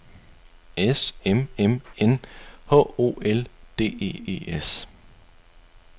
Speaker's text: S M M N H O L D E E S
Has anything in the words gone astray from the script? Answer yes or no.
no